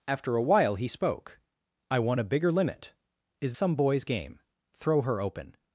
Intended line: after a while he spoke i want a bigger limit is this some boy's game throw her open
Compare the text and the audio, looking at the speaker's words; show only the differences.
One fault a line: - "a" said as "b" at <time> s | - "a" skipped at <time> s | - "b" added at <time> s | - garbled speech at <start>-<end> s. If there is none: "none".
- "this" skipped at 3.5 s